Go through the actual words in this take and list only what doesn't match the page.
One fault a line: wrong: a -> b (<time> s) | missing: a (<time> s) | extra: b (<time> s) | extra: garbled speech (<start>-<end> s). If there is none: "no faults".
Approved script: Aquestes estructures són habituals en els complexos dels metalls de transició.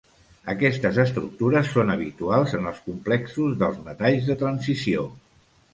no faults